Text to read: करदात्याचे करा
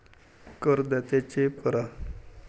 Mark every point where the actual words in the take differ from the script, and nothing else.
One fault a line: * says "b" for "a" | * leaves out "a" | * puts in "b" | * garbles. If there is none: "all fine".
all fine